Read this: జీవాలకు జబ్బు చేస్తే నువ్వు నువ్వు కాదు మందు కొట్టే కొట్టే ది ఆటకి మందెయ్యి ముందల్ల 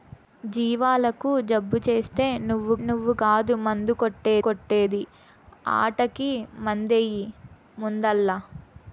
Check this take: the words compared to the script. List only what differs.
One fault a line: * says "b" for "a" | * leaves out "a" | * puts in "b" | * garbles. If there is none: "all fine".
all fine